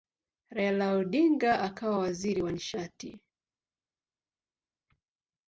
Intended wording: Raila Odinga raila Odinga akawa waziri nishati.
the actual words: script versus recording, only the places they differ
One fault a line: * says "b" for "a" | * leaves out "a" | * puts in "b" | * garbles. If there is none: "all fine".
* leaves out "raila Odinga"
* puts in "wa"